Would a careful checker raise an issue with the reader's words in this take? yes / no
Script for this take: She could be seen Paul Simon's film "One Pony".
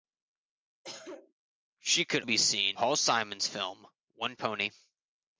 no